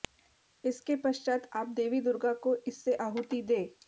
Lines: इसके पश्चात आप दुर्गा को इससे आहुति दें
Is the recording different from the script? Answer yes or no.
yes